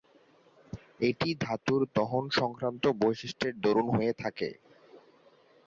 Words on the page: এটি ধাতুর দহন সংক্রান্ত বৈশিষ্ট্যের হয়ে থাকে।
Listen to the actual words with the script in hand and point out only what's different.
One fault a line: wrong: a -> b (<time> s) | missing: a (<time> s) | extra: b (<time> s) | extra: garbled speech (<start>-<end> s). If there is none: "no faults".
extra: দরুন (3.6 s)